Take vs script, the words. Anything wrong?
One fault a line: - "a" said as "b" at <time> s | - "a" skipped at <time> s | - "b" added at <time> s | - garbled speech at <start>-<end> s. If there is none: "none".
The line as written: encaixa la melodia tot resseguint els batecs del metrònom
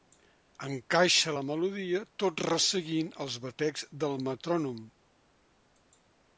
none